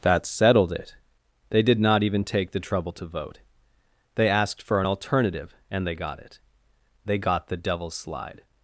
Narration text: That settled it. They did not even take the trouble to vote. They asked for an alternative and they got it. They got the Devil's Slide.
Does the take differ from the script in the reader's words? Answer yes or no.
no